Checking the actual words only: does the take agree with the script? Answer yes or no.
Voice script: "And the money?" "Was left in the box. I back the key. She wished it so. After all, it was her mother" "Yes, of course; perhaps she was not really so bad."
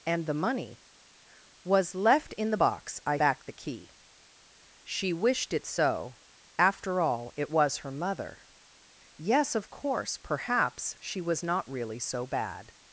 yes